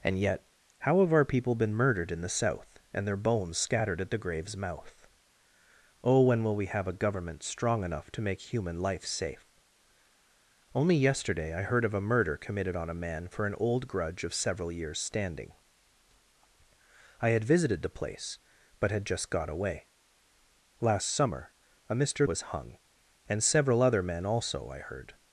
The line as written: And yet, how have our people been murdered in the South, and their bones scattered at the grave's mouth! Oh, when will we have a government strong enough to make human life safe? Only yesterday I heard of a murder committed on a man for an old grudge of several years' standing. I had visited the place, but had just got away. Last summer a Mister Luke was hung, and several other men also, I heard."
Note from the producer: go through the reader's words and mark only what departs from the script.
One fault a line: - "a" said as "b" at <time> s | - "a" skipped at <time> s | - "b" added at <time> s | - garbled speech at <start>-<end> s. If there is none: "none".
- "Luke" skipped at 22.2 s